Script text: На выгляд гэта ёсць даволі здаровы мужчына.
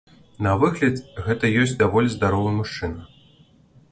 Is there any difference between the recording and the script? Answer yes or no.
no